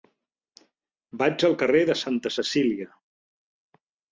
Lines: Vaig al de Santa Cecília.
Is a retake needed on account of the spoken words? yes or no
yes